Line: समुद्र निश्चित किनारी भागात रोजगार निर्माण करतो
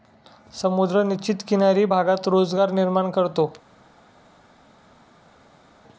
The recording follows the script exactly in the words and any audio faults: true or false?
true